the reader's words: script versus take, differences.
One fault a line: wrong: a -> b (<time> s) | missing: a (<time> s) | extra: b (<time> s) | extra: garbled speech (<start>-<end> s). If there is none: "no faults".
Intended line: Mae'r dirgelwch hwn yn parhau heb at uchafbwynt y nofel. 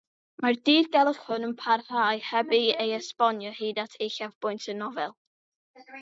extra: ei esbonio hyd (2.6 s)